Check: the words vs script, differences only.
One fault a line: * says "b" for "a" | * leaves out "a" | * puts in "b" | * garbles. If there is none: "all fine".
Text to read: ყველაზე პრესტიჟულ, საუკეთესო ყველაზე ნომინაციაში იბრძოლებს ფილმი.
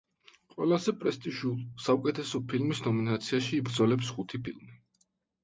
* says "ფილმის" for "ყველაზე"
* puts in "ხუთი"